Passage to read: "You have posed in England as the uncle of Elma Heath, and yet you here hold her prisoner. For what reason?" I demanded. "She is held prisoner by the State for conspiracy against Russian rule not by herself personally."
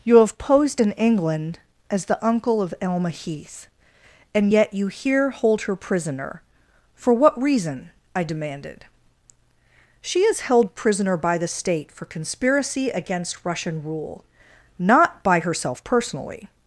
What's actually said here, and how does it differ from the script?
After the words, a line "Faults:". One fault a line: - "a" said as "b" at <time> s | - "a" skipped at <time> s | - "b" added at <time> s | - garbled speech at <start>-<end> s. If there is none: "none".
"You have posed in England as the uncle of Elma Heath, and yet you here hold her prisoner. For what reason?" I demanded. "She is held prisoner by the State for conspiracy against Russian rule not by herself personally."
Faults:
none